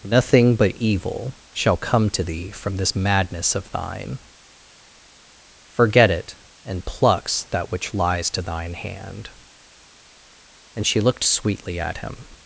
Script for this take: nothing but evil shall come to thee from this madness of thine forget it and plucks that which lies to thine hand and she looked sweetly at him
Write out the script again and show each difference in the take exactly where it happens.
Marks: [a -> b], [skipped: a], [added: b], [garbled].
nothing but evil shall come to thee from this madness of thine forget it and plucks that which lies to thine hand and she looked sweetly at him